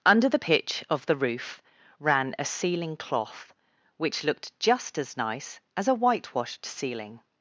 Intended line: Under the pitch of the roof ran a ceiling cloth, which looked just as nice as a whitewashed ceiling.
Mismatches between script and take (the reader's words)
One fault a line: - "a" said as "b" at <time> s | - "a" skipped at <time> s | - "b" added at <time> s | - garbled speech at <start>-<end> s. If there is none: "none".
none